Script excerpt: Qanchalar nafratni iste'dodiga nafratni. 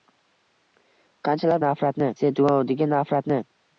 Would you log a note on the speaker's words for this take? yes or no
no